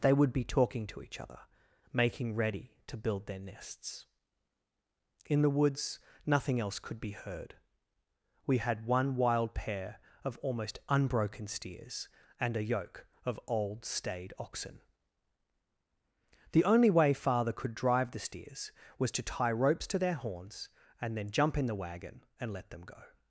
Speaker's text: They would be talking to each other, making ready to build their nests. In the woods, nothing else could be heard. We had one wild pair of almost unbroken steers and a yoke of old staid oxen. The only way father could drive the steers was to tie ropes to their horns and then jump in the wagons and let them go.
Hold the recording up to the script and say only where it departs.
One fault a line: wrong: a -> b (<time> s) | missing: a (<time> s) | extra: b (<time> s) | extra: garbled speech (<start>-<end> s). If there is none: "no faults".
wrong: wagons -> wagon (21.8 s)